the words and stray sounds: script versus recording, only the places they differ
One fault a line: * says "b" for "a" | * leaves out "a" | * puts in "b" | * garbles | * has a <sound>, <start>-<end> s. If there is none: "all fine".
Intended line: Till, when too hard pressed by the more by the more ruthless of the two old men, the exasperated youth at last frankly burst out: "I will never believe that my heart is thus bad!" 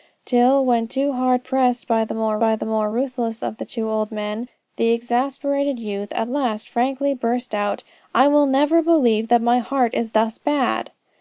all fine